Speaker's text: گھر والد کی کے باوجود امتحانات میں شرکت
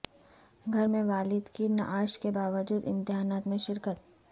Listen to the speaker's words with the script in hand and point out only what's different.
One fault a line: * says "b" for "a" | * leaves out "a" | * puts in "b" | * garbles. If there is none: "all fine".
* puts in "میں"
* puts in "نعش"